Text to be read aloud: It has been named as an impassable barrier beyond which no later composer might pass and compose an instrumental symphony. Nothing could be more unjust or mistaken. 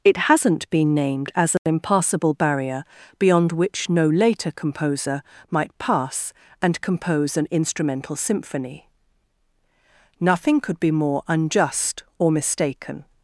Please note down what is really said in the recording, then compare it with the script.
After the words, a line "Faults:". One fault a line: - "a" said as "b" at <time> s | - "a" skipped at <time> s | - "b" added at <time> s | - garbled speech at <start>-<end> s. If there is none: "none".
It hasn't been named as an impassable barrier beyond which no later composer might pass and compose an instrumental symphony. Nothing could be more unjust or mistaken.
Faults:
- "has" said as "hasn't" at 0.2 s